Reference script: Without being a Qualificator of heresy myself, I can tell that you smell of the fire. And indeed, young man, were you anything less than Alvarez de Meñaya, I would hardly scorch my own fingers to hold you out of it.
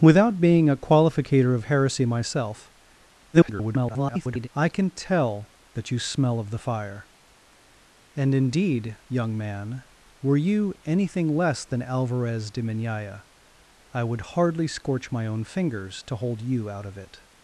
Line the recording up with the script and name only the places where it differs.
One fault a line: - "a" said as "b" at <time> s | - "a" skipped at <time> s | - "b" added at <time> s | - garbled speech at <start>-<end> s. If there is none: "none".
- garbled speech at 3.3-4.5 s